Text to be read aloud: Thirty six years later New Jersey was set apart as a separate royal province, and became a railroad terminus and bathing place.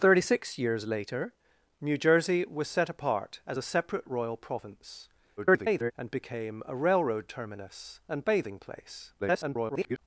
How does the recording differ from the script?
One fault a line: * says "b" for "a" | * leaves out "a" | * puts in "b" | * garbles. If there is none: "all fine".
* garbles
* garbles